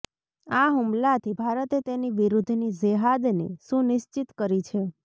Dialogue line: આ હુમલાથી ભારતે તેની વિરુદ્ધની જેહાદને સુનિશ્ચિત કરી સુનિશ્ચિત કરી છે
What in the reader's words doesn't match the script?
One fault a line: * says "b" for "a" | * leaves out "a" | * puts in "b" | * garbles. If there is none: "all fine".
* leaves out "સુનિશ્ચિત કરી"